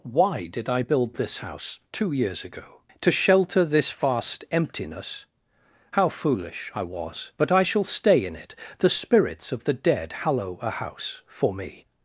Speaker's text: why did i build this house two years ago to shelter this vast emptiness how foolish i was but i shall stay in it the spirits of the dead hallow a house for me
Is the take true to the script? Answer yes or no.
yes